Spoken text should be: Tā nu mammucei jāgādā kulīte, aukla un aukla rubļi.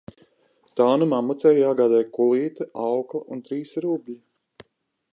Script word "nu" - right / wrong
right